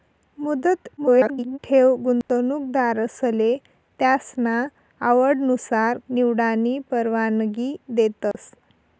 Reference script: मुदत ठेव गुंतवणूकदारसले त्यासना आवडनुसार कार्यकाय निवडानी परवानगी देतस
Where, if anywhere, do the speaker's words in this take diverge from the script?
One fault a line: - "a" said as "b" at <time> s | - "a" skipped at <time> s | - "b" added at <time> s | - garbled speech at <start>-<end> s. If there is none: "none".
- garbled speech at 1.0-1.6 s
- "कार्यकाय" skipped at 6.0 s